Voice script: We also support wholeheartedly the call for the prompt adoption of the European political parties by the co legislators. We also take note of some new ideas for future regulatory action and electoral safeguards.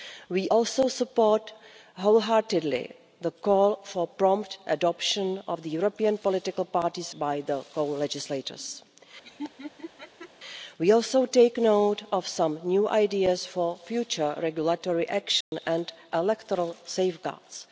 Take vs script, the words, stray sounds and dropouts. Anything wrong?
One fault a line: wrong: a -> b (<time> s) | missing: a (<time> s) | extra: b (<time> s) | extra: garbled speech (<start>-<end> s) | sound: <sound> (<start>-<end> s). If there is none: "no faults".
sound: laugh (9.2-10.3 s)
sound: dropout (15.4-15.5 s)